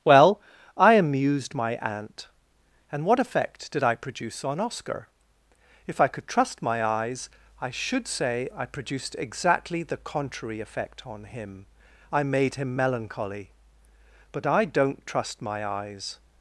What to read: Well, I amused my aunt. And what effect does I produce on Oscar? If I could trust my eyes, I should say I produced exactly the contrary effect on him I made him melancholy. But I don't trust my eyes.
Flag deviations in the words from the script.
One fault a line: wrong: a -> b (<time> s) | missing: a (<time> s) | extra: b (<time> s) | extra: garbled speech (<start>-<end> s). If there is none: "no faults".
wrong: does -> did (3.7 s)